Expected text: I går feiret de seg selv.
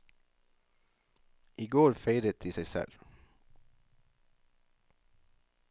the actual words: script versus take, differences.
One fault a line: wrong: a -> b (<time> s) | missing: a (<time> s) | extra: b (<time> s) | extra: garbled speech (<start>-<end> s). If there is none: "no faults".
no faults